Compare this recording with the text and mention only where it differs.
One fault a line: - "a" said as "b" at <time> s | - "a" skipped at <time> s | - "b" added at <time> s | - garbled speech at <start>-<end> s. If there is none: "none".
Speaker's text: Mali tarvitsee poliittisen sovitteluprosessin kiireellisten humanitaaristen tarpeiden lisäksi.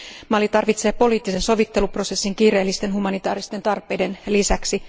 none